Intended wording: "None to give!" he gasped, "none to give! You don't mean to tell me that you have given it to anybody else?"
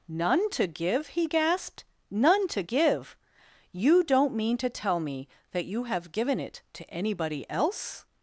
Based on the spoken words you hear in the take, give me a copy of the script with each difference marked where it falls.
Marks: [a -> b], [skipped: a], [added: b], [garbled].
"None to give!" he gasped, "none to give! You don't mean to tell me that you have given it to anybody else?"